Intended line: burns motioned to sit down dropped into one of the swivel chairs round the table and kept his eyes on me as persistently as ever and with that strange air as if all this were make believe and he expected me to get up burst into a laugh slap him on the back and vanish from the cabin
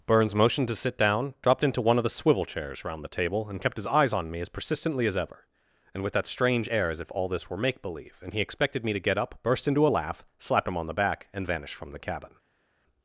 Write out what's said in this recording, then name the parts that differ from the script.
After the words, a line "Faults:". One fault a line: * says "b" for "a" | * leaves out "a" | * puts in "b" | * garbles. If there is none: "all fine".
burns motioned to sit down dropped into one of the swivel chairs round the table and kept his eyes on me as persistently as ever and with that strange air as if all this were make believe and he expected me to get up burst into a laugh slap him on the back and vanish from the cabin
Faults:
all fine